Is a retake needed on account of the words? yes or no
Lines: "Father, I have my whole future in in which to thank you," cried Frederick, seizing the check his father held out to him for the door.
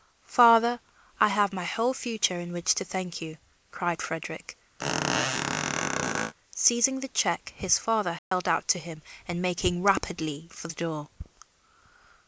yes